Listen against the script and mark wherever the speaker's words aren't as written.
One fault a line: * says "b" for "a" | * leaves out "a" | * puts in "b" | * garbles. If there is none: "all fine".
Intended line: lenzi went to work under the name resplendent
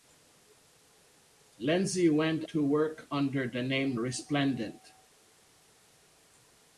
all fine